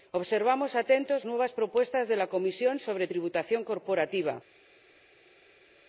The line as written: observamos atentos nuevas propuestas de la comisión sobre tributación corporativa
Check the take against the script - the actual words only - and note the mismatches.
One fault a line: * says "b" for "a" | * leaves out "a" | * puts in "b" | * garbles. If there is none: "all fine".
all fine